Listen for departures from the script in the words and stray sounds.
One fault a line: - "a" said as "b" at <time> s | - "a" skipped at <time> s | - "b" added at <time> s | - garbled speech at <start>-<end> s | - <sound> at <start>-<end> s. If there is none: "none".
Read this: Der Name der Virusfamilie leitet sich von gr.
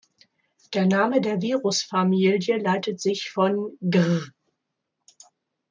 none